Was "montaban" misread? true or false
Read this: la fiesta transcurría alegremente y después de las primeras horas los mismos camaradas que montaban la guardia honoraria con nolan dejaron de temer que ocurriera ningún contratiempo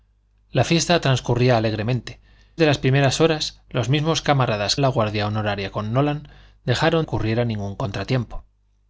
true